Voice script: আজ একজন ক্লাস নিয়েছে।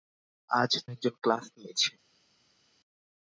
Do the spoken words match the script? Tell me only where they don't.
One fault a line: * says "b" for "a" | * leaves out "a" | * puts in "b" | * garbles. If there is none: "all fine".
all fine